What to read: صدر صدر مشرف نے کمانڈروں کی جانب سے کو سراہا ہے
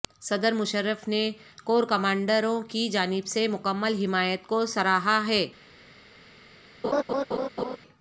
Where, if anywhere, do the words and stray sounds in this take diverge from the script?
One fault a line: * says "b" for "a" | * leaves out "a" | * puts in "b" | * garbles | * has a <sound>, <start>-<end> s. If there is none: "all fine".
* leaves out "صدر"
* puts in "کور"
* puts in "مکمل حمایت"
* has a laugh, 6.8-7.8 s